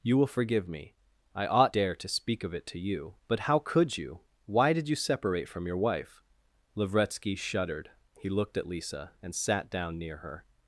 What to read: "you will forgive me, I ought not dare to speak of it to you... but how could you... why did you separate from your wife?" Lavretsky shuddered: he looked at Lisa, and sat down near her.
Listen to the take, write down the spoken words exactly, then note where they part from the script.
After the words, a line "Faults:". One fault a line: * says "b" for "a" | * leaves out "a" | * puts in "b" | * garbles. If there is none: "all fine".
"you will forgive me, I ought dare to speak of it to you... but how could you... why did you separate from your wife?" Lavretsky shuddered: he looked at Lisa, and sat down near her.
Faults:
* leaves out "not"